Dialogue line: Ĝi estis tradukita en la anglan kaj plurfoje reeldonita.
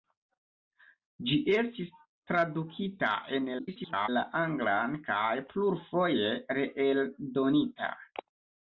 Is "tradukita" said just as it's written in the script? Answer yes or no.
yes